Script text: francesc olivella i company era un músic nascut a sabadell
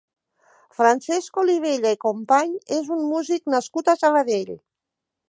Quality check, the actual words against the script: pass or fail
fail